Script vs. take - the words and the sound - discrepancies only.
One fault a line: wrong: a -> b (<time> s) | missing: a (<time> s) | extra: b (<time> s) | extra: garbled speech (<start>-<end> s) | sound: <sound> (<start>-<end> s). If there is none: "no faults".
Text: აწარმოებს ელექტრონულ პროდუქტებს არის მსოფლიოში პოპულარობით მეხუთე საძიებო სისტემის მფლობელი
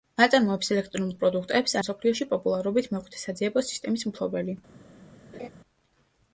missing: არის (1.8 s)
sound: laugh (5.3-5.5 s)